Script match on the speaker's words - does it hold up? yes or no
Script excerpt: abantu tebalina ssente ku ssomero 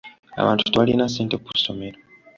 yes